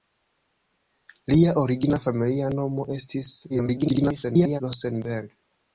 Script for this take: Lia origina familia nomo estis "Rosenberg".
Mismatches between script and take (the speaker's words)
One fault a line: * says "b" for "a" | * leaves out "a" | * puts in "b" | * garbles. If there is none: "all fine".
* garbles